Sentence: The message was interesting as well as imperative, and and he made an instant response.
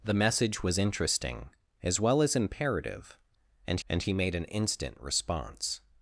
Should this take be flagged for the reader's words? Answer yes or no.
no